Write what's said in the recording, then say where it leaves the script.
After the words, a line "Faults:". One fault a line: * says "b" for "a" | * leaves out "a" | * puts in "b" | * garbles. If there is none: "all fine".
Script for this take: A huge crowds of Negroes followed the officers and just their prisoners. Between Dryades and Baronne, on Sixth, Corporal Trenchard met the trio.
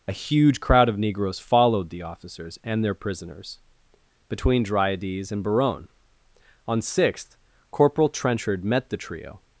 A huge crowd of Negroes followed the officers and their prisoners. Between Dryades and Baronne, on Sixth, Corporal Trenchard met the trio.
Faults:
* says "crowd" for "crowds"
* leaves out "just"